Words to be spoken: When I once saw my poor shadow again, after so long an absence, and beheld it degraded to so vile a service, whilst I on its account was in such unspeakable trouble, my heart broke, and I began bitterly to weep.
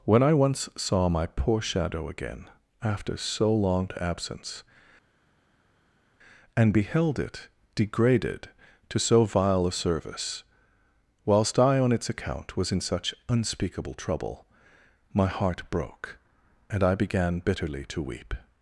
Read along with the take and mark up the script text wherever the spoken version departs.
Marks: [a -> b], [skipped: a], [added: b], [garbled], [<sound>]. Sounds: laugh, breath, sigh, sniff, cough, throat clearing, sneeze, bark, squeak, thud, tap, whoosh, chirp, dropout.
When I once saw my poor shadow again, after so long [skipped: an] absence, and beheld it degraded to so vile a service, whilst I on its account was in such unspeakable trouble, my heart broke, and I began bitterly to weep.